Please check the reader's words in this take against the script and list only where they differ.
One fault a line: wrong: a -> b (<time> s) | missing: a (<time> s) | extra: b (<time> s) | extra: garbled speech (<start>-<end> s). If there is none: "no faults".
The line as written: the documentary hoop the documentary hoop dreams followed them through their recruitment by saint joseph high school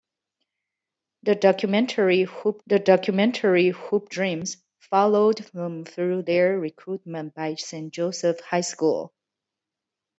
no faults